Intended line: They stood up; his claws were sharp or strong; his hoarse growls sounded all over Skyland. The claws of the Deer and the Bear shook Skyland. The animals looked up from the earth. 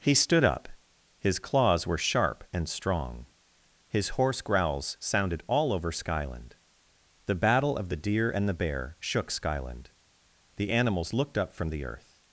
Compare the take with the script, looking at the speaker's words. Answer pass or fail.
fail